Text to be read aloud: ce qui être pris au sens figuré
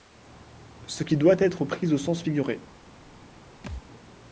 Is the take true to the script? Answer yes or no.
no